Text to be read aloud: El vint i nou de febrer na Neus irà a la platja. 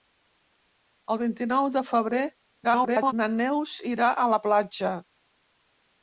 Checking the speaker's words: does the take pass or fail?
fail